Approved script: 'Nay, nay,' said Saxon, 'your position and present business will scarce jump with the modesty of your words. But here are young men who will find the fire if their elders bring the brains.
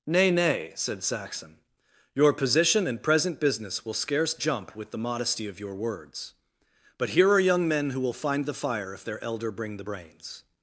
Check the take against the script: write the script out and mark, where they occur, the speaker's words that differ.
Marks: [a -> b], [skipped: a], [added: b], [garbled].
'Nay, nay,' said Saxon, 'your position and present business will scarce jump with the modesty of your words. But here are young men who will find the fire if their [elders -> elder] bring the brains.